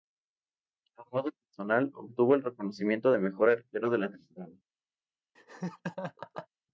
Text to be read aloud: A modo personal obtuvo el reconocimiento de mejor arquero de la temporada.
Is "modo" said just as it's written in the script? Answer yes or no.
yes